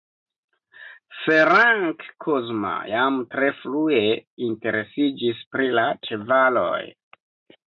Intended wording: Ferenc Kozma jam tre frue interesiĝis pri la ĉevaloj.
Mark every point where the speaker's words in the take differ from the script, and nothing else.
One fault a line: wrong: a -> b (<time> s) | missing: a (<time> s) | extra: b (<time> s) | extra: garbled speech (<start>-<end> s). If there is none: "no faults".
no faults